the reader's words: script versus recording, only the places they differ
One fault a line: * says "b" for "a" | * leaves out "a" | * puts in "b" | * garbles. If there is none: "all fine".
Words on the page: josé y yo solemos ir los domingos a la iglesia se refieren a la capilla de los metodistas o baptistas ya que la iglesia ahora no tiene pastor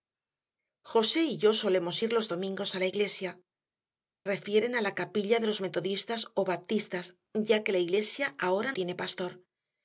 * leaves out "se"
* leaves out "no"